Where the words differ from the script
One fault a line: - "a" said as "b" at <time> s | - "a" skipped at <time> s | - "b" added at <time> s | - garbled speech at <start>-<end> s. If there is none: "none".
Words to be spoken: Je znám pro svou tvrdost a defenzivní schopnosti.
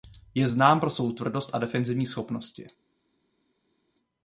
none